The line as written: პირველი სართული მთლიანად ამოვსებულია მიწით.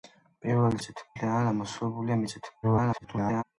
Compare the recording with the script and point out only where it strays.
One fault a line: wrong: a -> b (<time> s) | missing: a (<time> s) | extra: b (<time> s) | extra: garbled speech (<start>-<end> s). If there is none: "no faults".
wrong: სართული -> მიწით (0.8 s)
extra: garbled speech (2.6-3.4 s)